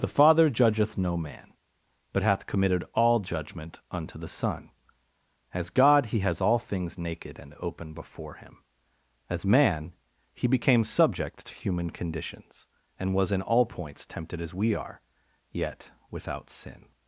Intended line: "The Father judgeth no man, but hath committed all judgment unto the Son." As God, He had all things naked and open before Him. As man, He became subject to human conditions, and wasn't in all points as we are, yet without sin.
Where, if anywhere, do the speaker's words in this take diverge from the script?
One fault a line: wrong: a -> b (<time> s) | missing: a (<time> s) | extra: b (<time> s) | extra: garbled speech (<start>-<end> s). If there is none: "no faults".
wrong: had -> has (6.2 s)
wrong: wasn't -> was (13.1 s)
extra: tempted (14.1 s)